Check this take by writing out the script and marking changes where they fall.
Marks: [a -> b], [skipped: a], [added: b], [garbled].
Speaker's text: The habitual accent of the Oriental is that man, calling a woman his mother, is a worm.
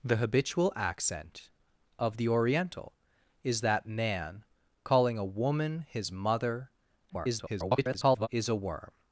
The habitual accent of the Oriental is that man, calling a woman his mother, [garbled] is a worm.